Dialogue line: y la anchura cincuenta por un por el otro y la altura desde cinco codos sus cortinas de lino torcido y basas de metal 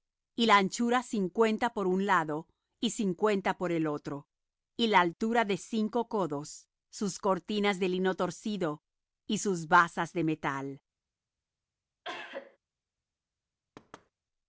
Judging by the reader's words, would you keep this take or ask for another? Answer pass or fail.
fail